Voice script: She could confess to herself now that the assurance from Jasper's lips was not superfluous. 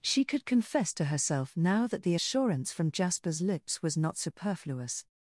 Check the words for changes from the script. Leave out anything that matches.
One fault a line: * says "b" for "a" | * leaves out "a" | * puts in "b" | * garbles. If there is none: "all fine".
all fine